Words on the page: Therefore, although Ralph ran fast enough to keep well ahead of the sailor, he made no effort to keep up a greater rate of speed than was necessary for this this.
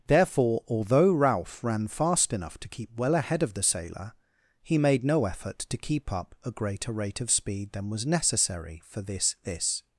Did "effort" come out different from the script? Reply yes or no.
no